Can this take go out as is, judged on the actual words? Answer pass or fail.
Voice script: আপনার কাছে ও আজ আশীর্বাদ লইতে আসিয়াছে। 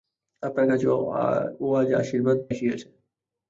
fail